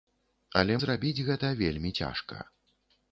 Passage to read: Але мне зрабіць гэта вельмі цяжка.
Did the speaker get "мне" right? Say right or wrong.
wrong